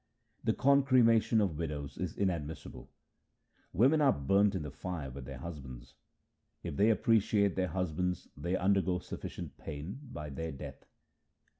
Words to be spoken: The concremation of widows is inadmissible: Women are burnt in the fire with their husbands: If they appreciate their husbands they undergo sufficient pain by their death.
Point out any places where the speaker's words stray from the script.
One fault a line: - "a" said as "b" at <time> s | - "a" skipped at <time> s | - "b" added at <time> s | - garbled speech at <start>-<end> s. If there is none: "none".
none